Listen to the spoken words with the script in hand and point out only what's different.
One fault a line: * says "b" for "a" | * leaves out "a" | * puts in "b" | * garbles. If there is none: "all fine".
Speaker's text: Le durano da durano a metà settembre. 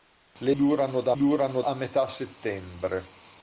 all fine